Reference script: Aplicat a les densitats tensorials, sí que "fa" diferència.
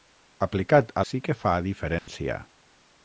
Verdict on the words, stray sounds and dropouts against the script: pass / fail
fail